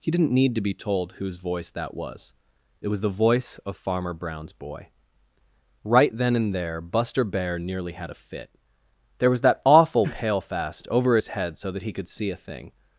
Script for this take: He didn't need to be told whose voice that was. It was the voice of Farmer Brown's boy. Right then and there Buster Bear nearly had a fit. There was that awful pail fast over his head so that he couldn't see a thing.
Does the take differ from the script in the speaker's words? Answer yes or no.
yes